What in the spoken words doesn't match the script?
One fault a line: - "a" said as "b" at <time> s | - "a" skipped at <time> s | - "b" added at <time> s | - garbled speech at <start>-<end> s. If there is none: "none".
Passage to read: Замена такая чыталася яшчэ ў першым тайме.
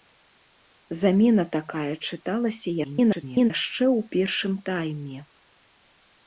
- garbled speech at 2.8-3.5 s